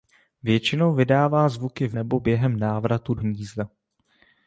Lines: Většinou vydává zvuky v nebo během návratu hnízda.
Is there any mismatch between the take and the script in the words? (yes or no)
no